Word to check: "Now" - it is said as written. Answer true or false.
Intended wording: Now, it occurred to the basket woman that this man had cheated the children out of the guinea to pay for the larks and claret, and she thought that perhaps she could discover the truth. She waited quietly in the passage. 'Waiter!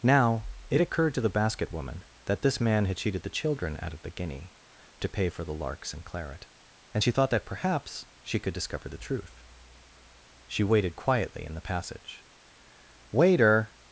true